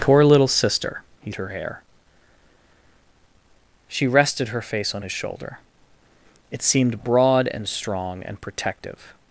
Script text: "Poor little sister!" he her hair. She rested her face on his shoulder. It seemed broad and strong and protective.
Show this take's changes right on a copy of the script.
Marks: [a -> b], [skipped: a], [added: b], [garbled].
"Poor little sister!" he her hair. She rested her face on his shoulder. It seemed broad and strong and protective.